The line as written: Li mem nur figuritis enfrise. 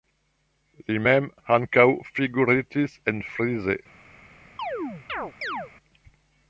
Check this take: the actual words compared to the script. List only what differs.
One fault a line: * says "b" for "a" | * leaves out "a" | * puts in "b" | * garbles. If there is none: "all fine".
* says "ankaŭ" for "nur"